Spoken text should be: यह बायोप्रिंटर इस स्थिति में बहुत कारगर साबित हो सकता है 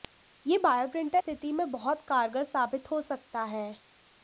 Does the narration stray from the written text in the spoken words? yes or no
yes